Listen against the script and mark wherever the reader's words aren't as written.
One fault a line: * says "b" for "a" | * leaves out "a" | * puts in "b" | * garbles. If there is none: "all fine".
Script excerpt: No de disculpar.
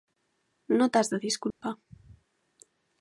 * puts in "t'has"